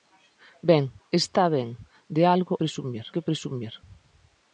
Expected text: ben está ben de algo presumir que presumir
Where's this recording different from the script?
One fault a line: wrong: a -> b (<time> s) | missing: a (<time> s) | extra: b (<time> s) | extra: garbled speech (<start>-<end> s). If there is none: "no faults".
no faults